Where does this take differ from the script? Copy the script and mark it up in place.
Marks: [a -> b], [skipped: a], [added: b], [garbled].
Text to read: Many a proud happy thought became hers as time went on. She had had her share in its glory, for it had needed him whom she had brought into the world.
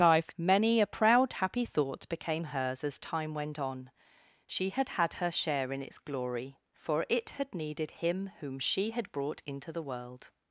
[added: life] Many a proud happy thought became hers as time went on. She had had her share in its glory, for it had needed him whom she had brought into the world.